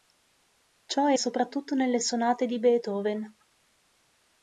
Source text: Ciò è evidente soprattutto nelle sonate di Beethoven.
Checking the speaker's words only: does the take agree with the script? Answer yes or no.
no